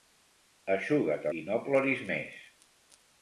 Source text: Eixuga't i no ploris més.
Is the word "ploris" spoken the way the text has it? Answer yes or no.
yes